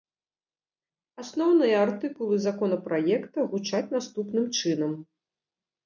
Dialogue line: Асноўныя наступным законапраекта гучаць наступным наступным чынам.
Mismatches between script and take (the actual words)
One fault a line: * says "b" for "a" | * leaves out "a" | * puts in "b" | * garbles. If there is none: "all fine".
* says "артыкулы" for "наступным"
* leaves out "наступным"